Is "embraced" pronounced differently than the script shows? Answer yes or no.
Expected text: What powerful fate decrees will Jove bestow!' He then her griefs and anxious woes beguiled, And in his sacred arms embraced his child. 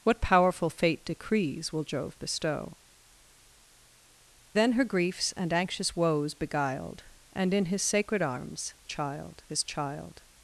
yes